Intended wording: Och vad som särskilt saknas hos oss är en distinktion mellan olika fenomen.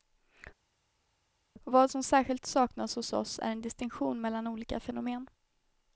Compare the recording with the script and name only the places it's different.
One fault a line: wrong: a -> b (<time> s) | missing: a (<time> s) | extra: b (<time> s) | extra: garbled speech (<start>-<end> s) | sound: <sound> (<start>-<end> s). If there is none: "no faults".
no faults